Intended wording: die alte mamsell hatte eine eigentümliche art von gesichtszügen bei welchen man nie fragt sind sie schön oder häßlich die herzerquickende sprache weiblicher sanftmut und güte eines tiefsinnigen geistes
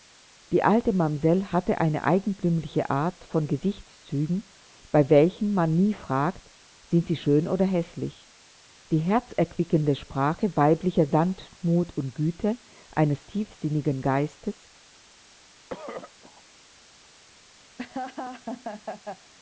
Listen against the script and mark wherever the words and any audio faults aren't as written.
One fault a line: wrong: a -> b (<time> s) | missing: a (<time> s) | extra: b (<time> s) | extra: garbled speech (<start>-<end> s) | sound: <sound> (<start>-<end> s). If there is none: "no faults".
sound: throat clearing (15.7-16.4 s)
sound: laugh (17.8-19.3 s)